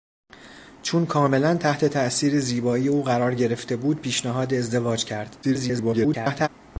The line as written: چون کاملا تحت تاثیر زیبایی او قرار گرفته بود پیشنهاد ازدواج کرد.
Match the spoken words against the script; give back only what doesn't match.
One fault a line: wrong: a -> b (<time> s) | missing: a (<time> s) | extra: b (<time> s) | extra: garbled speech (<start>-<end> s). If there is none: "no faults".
extra: garbled speech (5.4-6.5 s)